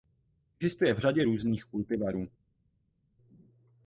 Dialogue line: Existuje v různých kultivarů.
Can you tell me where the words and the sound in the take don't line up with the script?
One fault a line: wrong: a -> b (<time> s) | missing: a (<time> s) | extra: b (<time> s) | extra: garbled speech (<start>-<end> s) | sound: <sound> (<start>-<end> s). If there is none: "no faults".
extra: řadě (1.0 s)